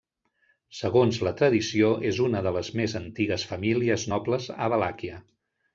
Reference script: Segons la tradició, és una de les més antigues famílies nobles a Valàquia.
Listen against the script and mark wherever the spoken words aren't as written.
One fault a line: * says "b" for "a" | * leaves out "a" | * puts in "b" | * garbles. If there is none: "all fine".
all fine